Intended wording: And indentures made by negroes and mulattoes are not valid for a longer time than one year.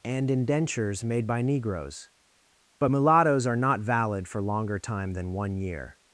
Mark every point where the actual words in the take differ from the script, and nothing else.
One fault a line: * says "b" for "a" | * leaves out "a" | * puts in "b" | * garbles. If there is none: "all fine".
* says "but" for "and"
* leaves out "a"